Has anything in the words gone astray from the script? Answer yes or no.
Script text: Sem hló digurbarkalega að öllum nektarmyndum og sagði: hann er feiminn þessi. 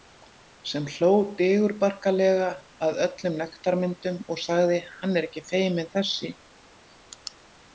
yes